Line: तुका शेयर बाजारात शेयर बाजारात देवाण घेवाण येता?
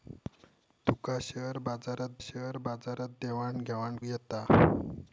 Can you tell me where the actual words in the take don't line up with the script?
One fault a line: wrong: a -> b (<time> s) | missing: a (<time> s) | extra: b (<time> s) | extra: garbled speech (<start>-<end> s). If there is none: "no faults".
no faults